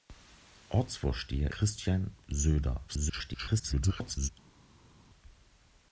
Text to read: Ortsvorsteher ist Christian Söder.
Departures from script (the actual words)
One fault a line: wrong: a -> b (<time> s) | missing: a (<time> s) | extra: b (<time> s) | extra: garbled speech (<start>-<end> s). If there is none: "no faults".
missing: ist (1.5 s)
extra: garbled speech (2.9-4.3 s)